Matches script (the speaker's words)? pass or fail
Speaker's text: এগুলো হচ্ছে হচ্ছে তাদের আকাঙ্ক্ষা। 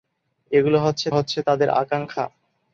pass